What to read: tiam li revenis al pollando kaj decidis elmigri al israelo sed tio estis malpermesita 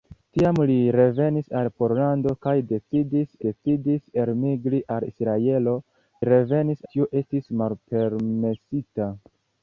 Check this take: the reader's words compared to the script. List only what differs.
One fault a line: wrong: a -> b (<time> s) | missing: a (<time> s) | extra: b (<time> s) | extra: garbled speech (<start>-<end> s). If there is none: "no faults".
extra: decidis (3.4 s)
wrong: sed -> revenis (6.3 s)